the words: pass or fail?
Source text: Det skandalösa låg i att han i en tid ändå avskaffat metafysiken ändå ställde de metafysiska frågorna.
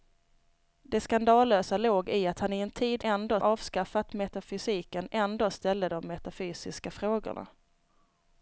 pass